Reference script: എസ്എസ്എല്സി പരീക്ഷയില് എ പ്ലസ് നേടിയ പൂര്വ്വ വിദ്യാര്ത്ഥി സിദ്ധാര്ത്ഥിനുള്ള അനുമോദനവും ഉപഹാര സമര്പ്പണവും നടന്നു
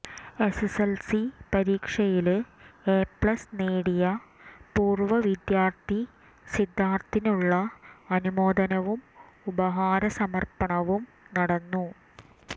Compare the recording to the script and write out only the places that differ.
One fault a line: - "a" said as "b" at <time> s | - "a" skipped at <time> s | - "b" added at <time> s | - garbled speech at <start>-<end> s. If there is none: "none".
none